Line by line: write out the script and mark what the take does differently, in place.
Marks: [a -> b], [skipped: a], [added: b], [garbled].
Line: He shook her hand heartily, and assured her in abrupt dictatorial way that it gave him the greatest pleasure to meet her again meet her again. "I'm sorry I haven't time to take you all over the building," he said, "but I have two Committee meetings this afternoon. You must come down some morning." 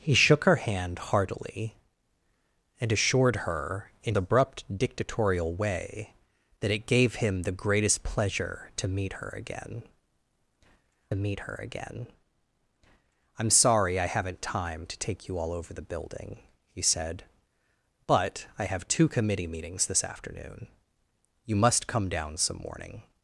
He shook her hand heartily, and assured her in abrupt dictatorial way that it gave him the greatest pleasure to meet her again meet her again. "I'm sorry I haven't time to take you all over the building," he said, "but I have two Committee meetings this afternoon. You must come down some morning."